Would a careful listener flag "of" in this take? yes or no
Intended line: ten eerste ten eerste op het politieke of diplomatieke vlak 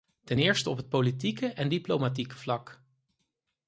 yes